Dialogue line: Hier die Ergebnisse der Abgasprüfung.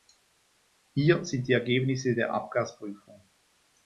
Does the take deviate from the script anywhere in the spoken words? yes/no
yes